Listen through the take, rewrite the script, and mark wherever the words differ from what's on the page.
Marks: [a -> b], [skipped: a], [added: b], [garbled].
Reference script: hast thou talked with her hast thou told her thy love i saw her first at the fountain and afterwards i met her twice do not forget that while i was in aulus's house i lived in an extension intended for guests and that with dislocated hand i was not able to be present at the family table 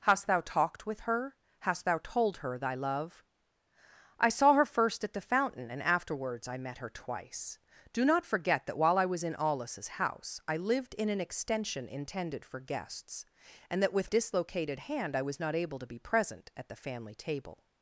hast thou talked with her hast thou told her thy love i saw her first at the fountain and afterwards i met her twice do not forget that while i was in aulus's house i lived in an extension intended for guests and that with dislocated hand i was not able to be present at the family table